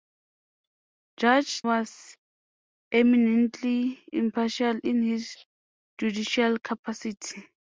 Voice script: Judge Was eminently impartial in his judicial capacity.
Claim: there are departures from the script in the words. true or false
false